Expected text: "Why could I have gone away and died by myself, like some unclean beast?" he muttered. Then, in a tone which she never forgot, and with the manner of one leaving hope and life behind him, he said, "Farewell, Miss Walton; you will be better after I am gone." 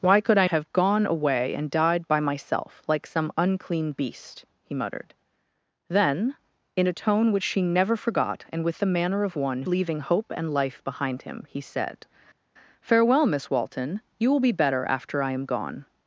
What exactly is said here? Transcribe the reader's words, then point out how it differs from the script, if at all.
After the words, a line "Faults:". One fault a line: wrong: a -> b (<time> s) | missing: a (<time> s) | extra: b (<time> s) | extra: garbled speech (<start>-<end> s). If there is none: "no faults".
"Why could I have gone away and died by myself, like some unclean beast?" he muttered. Then, in a tone which she never forgot, and with the manner of one leaving hope and life behind him, he said, "Farewell, Miss Walton; you will be better after I am gone."
Faults:
no faults